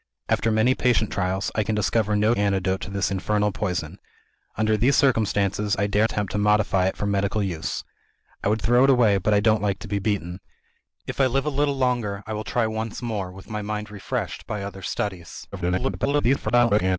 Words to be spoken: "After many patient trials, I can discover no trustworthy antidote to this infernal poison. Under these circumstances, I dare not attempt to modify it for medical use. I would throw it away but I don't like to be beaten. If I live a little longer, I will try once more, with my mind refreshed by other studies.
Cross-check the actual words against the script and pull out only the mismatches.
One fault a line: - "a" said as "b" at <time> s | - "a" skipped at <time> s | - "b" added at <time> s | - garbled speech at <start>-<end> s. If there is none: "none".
- "trustworthy" skipped at 2.3 s
- "not" skipped at 6.1 s
- garbled speech at 15.5-17.0 s